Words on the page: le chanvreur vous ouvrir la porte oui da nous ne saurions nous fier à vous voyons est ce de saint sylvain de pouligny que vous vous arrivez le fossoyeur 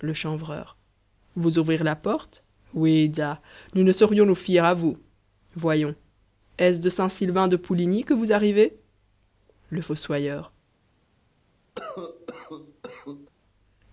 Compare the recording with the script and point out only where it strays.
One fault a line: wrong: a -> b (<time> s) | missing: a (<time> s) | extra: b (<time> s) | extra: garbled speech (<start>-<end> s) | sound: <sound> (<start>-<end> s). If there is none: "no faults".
missing: vous (8.3 s)
sound: cough (11.8-13.3 s)